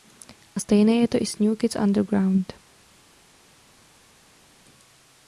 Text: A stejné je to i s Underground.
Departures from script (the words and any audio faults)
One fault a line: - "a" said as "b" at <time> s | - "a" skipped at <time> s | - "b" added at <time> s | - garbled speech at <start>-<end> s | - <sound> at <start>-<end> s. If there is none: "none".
- "New Kids" added at 1.4 s